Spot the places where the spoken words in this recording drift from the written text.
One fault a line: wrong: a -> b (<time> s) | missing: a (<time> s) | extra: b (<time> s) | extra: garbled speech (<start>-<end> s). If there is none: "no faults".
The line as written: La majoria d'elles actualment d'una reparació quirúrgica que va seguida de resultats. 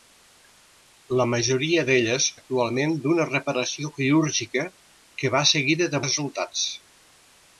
no faults